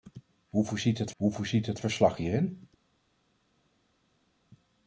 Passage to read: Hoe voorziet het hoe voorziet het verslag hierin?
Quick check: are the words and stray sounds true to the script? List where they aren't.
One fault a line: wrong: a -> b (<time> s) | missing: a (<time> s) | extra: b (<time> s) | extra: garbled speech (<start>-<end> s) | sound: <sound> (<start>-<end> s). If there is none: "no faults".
no faults